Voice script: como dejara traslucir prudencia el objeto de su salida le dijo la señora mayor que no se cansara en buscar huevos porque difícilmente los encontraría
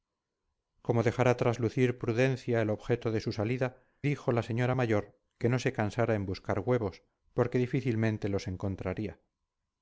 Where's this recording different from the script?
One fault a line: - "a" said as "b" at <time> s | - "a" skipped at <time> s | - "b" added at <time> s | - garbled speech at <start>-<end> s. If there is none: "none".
- "le" skipped at 3.8 s